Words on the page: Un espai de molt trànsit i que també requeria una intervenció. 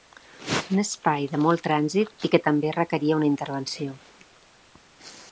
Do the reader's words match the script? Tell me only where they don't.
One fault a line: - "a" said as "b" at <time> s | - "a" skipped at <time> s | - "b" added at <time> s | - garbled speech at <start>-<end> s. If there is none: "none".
none